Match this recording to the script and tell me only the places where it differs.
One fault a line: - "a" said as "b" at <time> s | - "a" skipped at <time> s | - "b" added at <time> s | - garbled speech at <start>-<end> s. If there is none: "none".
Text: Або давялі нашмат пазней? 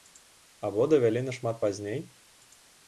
none